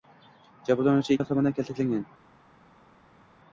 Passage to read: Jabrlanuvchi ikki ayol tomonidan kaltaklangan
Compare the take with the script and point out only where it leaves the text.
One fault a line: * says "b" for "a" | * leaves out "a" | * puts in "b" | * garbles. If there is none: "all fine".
* leaves out "ikki"